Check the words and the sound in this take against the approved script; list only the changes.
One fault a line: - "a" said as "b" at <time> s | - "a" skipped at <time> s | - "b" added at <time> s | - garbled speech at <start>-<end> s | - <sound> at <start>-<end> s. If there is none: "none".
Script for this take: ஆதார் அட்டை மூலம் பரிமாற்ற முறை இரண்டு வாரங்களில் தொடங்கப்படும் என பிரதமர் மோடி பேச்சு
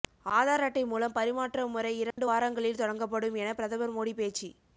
- dropout at 2.1-2.2 s